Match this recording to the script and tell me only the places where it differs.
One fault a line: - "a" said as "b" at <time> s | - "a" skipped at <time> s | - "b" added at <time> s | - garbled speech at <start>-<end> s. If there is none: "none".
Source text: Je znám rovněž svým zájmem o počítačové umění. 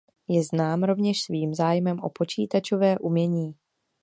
none